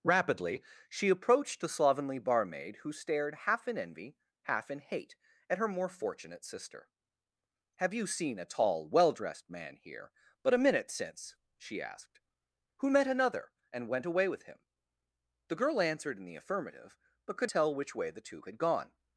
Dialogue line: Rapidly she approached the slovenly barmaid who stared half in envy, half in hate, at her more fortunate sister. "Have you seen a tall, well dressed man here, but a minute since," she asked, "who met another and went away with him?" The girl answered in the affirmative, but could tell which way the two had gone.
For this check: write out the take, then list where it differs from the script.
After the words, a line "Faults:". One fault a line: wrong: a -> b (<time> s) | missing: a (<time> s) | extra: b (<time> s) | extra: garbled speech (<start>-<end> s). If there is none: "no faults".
Rapidly she approached the slovenly barmaid who stared half in envy, half in hate, at her more fortunate sister. "Have you seen a tall, well dressed man here, but a minute since," she asked, "who met another and went away with him?" The girl answered in the affirmative, but could tell which way the two had gone.
Faults:
no faults